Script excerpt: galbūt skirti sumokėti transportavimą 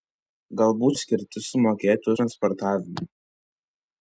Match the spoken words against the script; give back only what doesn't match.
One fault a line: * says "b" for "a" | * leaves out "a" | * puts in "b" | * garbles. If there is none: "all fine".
all fine